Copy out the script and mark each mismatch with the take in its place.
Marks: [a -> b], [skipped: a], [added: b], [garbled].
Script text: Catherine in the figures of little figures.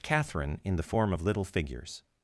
Catherine in the [figures -> form] of little figures.